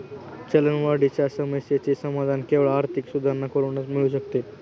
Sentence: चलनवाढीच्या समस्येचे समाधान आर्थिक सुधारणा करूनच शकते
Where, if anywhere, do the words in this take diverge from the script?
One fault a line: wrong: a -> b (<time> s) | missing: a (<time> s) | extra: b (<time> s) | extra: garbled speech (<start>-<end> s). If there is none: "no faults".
extra: केवळ (2.5 s)
extra: मिळू (3.9 s)